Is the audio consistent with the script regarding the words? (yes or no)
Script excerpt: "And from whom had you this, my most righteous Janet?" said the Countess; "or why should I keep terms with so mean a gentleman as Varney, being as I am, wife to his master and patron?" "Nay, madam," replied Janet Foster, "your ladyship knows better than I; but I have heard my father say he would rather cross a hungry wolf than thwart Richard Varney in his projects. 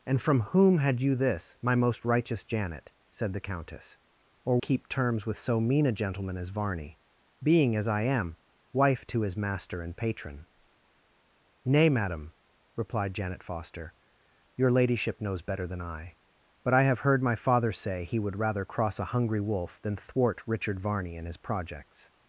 no